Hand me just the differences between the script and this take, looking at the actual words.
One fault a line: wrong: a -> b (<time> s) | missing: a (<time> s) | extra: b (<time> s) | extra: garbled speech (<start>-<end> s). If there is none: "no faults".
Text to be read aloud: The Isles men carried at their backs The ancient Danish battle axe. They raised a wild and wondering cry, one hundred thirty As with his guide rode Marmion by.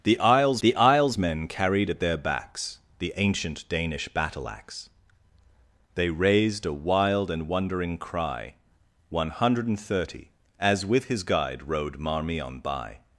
extra: the Isles (0.6 s)